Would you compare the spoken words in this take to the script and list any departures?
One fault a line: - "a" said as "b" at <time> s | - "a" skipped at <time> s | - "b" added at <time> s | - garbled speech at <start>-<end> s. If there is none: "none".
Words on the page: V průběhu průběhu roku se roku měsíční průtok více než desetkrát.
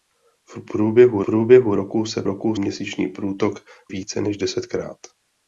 none